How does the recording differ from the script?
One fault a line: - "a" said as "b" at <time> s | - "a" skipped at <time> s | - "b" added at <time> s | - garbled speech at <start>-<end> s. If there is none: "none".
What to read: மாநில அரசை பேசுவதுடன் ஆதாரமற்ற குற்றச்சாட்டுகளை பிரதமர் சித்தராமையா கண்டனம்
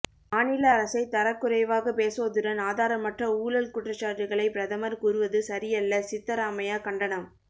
- "தரக்குறைவாக" added at 1.1 s
- "ஊழல்" added at 3.4 s
- "கூறுவது சரியல்ல" added at 5.0 s